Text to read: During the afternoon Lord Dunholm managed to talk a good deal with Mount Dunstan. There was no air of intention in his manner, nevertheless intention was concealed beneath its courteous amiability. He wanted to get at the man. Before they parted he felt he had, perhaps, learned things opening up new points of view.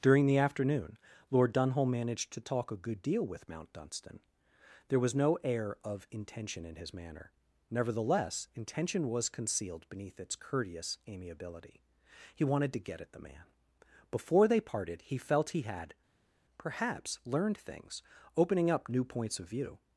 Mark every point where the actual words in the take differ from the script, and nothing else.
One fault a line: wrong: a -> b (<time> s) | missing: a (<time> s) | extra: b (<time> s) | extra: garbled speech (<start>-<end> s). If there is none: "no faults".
no faults